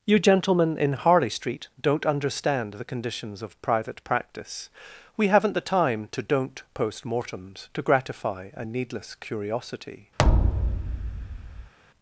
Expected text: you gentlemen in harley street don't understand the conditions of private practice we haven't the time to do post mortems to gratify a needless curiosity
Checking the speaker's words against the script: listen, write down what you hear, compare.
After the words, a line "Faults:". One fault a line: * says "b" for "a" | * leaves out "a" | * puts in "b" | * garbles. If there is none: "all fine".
you gentlemen in harley street don't understand the conditions of private practice we haven't the time to don't post mortems to gratify a needless curiosity
Faults:
* says "don't" for "do"